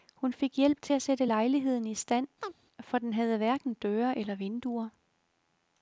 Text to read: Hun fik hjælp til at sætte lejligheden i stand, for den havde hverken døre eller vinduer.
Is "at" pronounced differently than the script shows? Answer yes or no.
no